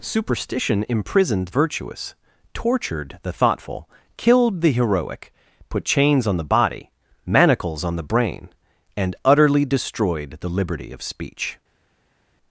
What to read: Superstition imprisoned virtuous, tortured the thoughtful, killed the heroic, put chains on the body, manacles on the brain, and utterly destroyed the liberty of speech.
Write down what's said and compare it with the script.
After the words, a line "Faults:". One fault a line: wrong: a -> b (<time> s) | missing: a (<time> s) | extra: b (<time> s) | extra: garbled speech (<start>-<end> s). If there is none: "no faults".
Superstition imprisoned virtuous, tortured the thoughtful, killed the heroic, put chains on the body, manacles on the brain, and utterly destroyed the liberty of speech.
Faults:
no faults